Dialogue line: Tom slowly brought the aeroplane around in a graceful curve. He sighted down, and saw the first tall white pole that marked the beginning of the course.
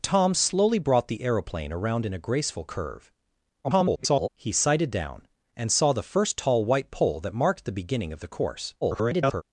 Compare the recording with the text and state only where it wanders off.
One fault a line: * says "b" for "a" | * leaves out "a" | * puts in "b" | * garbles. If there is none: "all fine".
* garbles
* garbles